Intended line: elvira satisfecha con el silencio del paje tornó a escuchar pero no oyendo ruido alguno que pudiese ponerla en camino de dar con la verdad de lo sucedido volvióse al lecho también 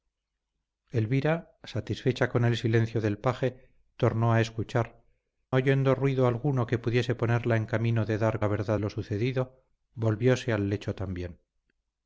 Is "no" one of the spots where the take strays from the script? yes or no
yes